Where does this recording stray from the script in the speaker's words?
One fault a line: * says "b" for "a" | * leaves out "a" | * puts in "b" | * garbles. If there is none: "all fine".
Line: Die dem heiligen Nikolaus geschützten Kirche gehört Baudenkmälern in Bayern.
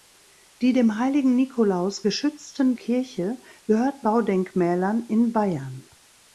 all fine